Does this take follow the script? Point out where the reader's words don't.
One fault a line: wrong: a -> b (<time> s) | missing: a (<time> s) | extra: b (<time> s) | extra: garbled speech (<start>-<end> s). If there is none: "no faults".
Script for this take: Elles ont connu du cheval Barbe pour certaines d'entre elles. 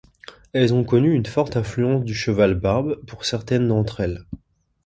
extra: une forte influence (1.1 s)